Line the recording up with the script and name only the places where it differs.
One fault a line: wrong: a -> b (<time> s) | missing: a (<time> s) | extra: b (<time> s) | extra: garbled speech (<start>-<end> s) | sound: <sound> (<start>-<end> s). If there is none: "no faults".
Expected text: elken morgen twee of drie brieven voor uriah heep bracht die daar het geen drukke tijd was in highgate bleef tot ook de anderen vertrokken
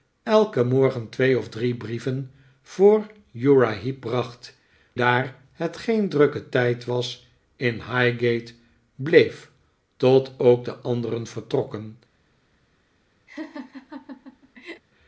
missing: die (4.6 s)
sound: laugh (13.3-14.8 s)